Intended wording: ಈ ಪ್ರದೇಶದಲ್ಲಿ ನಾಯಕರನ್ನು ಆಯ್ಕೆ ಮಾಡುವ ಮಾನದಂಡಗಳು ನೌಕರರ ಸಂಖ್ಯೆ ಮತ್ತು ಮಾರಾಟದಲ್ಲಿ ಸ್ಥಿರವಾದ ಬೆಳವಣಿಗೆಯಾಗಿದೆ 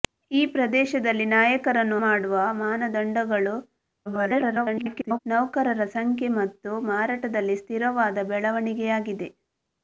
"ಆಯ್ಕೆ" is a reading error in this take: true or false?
true